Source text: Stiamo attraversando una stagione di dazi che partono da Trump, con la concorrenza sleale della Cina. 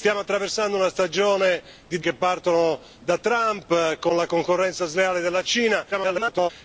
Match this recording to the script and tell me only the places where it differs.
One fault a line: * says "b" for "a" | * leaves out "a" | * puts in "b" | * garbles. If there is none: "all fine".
* leaves out "dazi"
* garbles